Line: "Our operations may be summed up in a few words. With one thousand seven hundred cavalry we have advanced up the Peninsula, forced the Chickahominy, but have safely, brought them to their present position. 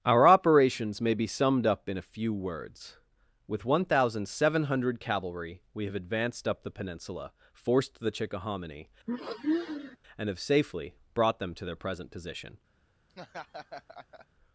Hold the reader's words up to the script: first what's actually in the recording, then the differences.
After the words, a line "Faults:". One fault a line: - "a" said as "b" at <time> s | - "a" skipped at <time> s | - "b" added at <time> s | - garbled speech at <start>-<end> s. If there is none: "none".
"Our operations may be summed up in a few words. With one thousand seven hundred cavalry we have advanced up the Peninsula, forced the Chickahominy, and have safely, brought them to their present position.
Faults:
- "but" said as "and" at 10.2 s